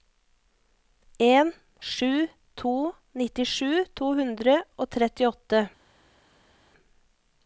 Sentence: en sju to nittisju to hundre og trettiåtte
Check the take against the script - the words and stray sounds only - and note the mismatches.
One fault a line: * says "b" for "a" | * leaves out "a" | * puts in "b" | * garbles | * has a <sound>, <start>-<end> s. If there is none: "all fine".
all fine